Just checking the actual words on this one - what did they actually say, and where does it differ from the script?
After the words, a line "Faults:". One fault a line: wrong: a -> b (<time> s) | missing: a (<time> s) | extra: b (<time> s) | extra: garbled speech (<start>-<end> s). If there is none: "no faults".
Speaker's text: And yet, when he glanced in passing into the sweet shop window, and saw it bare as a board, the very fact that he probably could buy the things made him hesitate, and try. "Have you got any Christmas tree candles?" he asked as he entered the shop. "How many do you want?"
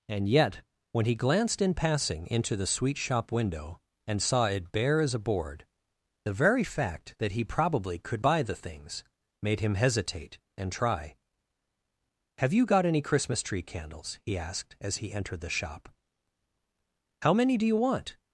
And yet, when he glanced in passing into the sweet shop window, and saw it bare as a board, the very fact that he probably could buy the things made him hesitate, and try. "Have you got any Christmas tree candles?" he asked as he entered the shop. "How many do you want?"
Faults:
no faults